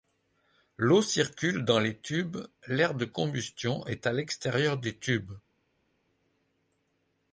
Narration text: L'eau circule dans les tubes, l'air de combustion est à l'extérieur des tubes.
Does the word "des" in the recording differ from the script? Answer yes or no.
no